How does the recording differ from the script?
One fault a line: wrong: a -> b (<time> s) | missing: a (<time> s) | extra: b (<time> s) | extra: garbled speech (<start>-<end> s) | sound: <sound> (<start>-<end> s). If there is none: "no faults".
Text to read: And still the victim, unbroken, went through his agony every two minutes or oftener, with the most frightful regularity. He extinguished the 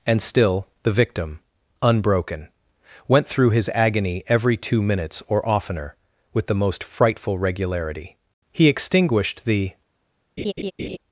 sound: laugh (10.4-11.0 s)